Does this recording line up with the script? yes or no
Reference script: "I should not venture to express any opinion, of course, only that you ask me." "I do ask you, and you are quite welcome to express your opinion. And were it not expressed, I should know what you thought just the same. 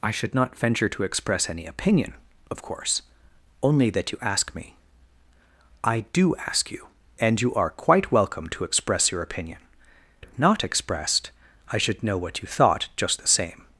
no